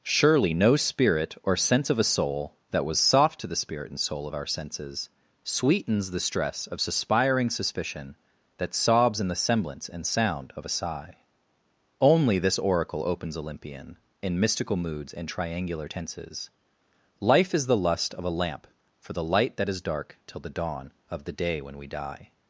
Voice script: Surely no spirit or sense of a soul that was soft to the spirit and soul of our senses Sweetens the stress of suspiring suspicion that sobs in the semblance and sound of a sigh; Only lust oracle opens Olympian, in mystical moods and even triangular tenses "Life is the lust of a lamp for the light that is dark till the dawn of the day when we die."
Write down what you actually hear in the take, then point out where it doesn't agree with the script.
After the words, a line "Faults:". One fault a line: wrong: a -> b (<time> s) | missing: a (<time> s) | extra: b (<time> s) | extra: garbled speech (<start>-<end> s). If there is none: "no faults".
Surely no spirit or sense of a soul that was soft to the spirit and soul of our senses Sweetens the stress of suspiring suspicion that sobs in the semblance and sound of a sigh; Only this oracle opens Olympian, in mystical moods and triangular tenses "Life is the lust of a lamp for the light that is dark till the dawn of the day when we die."
Faults:
wrong: lust -> this (12.4 s)
missing: even (15.3 s)